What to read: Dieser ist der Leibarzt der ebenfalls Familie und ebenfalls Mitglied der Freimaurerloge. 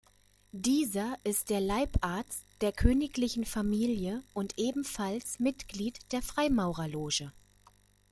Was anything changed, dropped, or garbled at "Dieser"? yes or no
no